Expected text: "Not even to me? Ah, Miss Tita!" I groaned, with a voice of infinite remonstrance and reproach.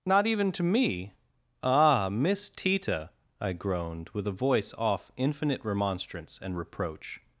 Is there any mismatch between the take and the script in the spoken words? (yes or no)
yes